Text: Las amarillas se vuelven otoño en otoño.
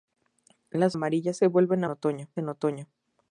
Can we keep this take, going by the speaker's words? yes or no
yes